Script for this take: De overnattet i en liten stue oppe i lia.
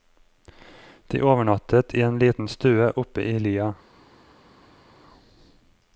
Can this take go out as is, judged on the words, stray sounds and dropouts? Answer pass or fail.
pass